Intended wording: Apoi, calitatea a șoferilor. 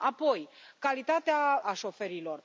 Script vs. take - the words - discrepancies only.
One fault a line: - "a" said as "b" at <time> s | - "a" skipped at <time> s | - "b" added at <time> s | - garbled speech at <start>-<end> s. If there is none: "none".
none